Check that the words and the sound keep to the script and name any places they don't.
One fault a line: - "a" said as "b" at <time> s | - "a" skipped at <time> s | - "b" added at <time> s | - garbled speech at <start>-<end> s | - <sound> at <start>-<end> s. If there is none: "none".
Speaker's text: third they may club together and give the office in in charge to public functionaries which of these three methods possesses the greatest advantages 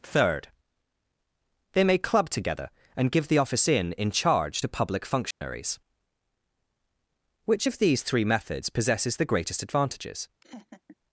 - dropout at 5.3-5.4 s
- laugh at 10.4-11.0 s